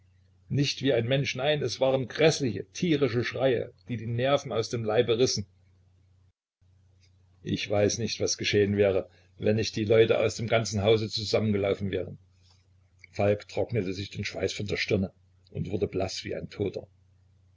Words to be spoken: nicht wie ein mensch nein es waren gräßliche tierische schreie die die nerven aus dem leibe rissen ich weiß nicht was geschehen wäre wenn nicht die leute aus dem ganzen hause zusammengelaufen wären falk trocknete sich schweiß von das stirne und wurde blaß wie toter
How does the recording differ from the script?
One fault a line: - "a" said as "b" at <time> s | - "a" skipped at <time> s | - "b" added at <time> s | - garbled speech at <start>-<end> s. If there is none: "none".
- "den" added at 14.1 s
- "das" said as "der" at 14.7 s
- "ein" added at 16.4 s